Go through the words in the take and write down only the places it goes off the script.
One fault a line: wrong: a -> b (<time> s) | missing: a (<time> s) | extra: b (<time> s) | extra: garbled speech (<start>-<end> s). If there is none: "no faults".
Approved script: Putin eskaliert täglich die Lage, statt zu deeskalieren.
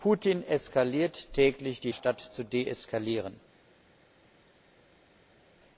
missing: Lage (1.9 s)